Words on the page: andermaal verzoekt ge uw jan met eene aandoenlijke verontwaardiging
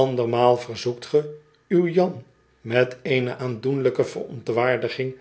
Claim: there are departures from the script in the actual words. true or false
false